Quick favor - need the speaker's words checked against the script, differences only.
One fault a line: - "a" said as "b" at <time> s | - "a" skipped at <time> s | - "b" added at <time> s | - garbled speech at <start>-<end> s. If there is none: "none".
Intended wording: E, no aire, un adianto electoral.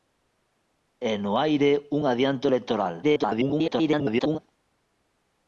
- garbled speech at 3.0-4.4 s